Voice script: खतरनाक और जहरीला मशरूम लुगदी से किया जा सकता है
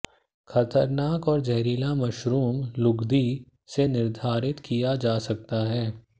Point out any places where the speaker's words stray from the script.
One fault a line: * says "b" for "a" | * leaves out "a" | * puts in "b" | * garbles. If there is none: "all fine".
* puts in "निर्धारित"